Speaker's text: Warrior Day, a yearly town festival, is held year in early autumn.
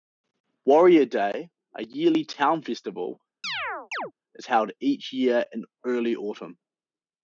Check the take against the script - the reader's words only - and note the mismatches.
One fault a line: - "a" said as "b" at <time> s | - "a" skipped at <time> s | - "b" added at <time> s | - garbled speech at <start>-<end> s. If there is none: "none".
- "each" added at 4.8 s